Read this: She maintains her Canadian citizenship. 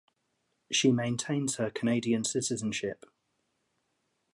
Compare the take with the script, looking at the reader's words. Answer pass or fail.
pass